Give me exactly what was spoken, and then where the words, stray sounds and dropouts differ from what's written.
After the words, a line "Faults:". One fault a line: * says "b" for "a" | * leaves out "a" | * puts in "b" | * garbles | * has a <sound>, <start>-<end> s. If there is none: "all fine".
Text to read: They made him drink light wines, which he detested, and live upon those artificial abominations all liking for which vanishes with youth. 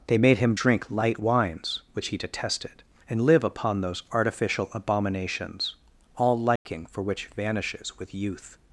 They made him drink light wines, which he detested, and live upon those artificial abominations all liking for which vanishes with youth.
Faults:
* has a dropout, 6.6-6.7 s